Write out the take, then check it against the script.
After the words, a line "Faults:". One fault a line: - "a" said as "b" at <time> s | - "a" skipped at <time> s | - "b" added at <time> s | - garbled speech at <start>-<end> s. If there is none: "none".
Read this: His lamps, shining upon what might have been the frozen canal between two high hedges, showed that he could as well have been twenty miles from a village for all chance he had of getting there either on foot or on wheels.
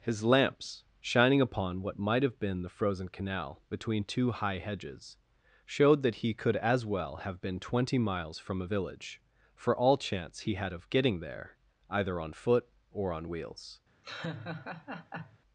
His lamps, shining upon what might have been the frozen canal between two high hedges, showed that he could as well have been twenty miles from a village for all chance he had of getting there either on foot or on wheels.
Faults:
none